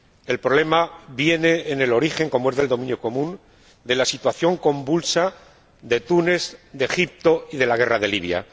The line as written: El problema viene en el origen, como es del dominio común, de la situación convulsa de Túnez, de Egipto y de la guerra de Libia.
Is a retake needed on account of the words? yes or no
no